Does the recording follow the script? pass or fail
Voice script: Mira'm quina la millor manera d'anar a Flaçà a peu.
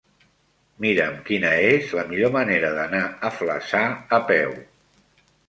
fail